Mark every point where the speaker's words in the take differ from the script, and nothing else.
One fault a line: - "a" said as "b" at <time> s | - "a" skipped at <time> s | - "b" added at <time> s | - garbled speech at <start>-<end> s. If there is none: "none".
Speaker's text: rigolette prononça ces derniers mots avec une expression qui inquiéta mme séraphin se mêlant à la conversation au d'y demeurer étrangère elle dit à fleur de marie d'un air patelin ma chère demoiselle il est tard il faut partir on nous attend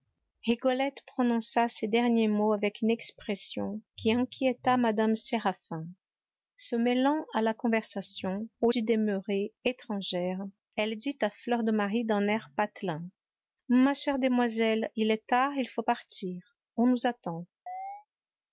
none